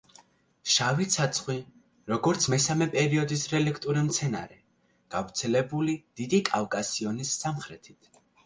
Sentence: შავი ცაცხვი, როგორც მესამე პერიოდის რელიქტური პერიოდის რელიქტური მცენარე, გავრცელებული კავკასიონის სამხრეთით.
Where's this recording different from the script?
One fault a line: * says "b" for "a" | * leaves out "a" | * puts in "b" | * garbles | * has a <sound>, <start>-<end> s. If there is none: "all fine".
* leaves out "პერიოდის რელიქტური"
* puts in "დიდი"